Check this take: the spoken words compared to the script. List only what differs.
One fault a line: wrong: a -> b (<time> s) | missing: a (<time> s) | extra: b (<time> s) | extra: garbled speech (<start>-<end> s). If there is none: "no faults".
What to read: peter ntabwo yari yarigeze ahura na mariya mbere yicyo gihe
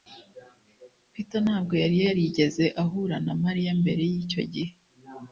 no faults